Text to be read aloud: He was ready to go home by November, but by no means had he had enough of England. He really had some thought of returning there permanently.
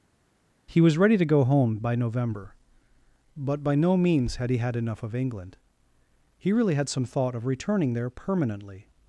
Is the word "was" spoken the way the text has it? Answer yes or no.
yes